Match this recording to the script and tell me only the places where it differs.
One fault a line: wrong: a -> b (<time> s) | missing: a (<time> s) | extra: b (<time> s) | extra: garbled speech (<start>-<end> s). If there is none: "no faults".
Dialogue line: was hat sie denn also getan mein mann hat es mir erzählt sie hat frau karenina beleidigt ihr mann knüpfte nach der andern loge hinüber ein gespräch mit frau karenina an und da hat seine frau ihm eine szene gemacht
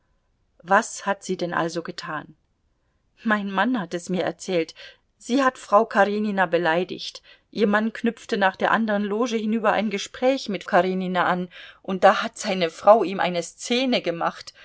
missing: frau (10.6 s)